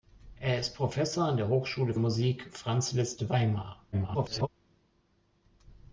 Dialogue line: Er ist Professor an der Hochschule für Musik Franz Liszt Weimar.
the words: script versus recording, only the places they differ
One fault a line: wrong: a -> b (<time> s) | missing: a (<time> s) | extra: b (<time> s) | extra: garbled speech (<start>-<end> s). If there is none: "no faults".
missing: für (1.9 s)
extra: garbled speech (3.9-4.5 s)